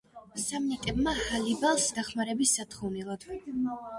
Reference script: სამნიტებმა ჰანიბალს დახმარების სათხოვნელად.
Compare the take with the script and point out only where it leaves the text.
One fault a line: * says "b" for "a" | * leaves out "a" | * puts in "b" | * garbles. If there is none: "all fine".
all fine